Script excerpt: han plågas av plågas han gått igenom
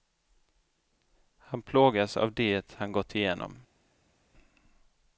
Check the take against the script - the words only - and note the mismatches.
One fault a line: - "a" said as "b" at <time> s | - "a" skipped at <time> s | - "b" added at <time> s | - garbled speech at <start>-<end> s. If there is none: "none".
- "plågas" said as "det" at 2.3 s